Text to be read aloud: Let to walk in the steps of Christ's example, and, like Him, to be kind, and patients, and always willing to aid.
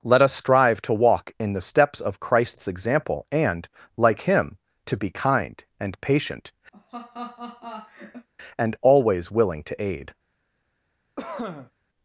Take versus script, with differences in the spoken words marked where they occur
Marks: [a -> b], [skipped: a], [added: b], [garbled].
Let [added: us strive] to walk in the steps of Christ's example, and, like Him, to be kind, and [patients, -> patient] and always willing to aid.